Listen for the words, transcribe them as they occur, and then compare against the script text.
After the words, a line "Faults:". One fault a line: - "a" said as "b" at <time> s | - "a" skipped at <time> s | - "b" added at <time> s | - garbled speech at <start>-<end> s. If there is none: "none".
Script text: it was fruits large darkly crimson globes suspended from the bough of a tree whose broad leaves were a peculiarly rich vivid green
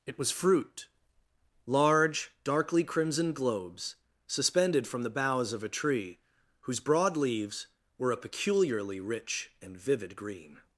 it was fruit large darkly crimson globes suspended from the boughs of a tree whose broad leaves were a peculiarly rich and vivid green
Faults:
- "fruits" said as "fruit" at 0.3 s
- "bough" said as "boughs" at 5.1 s
- "and" added at 9.6 s